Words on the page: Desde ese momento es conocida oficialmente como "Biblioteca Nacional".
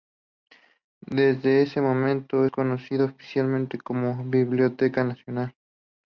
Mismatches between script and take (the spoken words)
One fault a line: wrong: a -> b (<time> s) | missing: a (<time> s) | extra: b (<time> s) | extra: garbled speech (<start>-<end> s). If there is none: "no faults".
no faults